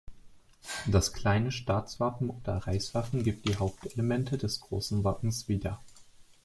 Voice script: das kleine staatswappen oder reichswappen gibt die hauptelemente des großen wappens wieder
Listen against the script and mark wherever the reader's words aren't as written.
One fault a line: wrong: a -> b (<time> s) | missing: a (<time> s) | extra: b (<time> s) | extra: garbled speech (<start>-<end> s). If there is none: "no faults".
no faults